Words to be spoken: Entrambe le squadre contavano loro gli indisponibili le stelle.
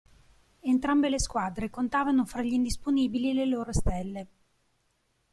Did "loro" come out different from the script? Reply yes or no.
yes